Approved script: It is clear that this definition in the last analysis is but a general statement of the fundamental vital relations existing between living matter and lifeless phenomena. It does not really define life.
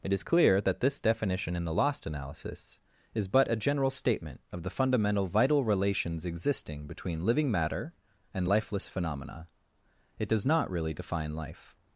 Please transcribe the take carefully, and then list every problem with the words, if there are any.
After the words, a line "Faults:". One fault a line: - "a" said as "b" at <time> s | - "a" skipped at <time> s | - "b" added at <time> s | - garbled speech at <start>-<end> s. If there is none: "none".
It is clear that this definition in the lost analysis is but a general statement of the fundamental vital relations existing between living matter and lifeless phenomena. It does not really define life.
Faults:
- "last" said as "lost" at 1.7 s